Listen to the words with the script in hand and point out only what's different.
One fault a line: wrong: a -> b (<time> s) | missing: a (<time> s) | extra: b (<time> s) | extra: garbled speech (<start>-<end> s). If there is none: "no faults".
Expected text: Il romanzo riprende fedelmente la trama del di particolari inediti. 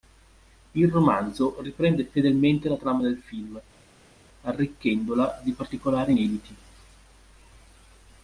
extra: film arricchendola (3.2 s)